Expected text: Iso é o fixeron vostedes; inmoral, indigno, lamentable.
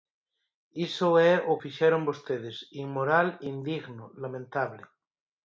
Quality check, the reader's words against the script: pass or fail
pass